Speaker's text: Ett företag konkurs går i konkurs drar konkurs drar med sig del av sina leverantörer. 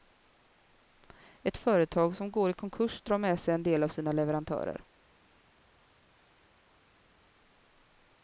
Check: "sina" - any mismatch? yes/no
no